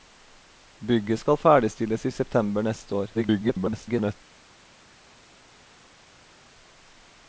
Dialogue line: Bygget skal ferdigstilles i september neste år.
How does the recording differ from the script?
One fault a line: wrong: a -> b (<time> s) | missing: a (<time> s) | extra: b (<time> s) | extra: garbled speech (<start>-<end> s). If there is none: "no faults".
extra: garbled speech (3.1-4.1 s)